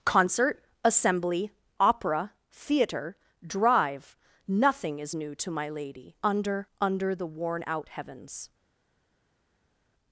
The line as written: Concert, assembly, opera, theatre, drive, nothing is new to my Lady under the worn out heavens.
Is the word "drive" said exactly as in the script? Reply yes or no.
yes